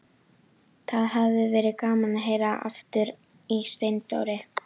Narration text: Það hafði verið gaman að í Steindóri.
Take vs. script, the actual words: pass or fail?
fail